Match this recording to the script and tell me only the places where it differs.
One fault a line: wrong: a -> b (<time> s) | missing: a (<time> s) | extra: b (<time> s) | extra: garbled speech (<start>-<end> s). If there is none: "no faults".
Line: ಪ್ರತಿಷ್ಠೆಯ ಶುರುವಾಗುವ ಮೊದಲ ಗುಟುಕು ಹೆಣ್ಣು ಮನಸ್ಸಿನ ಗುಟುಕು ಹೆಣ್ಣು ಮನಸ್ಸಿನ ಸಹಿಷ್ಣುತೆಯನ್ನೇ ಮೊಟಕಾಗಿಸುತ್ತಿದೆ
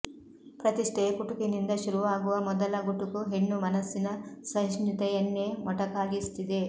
extra: ಕುಟುಕಿನಿಂದ (1.2 s)
missing: ಗುಟುಕು ಹೆಣ್ಣು ಮನಸ್ಸಿನ (4.1 s)